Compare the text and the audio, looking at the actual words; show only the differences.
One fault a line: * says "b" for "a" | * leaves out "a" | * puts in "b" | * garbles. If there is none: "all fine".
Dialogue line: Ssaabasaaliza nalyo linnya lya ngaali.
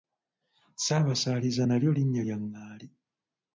all fine